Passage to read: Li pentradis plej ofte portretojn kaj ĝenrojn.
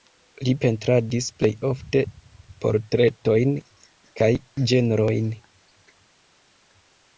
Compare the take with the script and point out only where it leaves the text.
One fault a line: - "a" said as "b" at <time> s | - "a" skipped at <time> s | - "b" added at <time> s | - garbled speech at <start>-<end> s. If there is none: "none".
none